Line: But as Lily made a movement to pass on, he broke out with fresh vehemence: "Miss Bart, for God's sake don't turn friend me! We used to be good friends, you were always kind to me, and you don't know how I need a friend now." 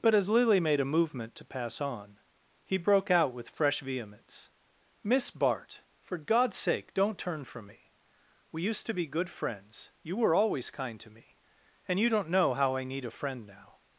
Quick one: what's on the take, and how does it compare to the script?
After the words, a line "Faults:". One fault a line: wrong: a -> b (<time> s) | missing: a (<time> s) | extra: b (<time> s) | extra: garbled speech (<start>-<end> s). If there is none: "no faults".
But as Lily made a movement to pass on, he broke out with fresh vehemence: "Miss Bart, for God's sake don't turn from me! We used to be good friends, you were always kind to me, and you don't know how I need a friend now."
Faults:
wrong: friend -> from (7.4 s)